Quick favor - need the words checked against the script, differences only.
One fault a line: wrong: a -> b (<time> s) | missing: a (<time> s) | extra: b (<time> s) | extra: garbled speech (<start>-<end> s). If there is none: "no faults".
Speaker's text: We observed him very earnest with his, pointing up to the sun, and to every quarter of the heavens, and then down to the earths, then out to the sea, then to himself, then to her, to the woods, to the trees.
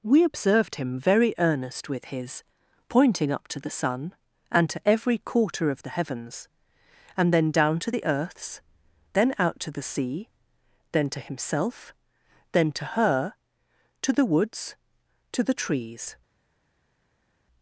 no faults